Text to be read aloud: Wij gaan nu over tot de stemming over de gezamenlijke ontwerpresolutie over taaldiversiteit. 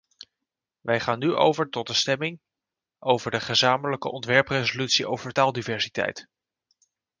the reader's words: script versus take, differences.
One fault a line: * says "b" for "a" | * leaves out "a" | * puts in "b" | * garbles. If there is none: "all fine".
all fine